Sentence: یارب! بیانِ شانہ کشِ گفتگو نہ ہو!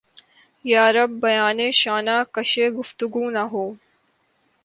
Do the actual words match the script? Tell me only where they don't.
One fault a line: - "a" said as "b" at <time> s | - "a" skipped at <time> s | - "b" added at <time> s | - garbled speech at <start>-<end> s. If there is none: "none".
none